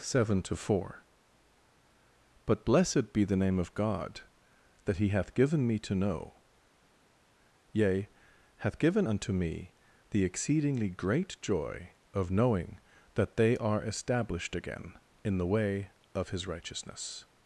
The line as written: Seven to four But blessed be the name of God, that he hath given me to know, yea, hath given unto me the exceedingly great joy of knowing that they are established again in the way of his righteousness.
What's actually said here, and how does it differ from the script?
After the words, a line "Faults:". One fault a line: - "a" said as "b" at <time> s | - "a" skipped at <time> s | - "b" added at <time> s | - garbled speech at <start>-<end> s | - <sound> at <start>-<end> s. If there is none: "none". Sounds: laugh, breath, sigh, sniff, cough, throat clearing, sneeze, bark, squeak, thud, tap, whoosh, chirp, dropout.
Seven to four But blessed be the name of God, that he hath given me to know, yea, hath given unto me the exceedingly great joy of knowing that they are established again in the way of his righteousness.
Faults:
none